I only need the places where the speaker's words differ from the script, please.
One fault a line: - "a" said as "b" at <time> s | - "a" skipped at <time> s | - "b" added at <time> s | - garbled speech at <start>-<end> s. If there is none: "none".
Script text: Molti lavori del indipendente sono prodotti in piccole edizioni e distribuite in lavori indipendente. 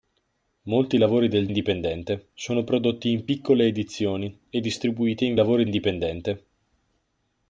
none